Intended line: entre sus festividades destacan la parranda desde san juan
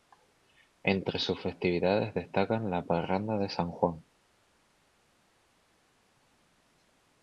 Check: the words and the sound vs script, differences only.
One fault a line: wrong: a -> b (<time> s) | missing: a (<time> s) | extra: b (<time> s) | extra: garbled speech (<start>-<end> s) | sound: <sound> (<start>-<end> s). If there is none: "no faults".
wrong: desde -> de (3.4 s)